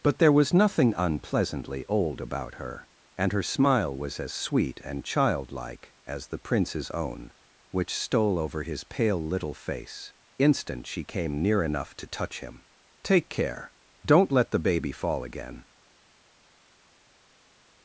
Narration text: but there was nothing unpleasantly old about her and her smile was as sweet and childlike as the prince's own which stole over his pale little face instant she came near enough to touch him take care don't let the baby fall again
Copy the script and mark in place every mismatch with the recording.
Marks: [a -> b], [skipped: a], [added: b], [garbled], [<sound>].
but there was nothing unpleasantly old about her and her smile was as sweet and childlike as the prince's own which stole over his pale little face instant she came near enough to touch him take care don't let the baby fall again